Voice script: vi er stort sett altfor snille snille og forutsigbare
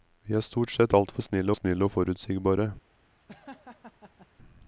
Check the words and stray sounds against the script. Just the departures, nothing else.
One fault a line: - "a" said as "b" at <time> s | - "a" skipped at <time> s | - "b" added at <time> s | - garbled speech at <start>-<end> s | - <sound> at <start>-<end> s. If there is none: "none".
- laugh at 3.3-4.3 s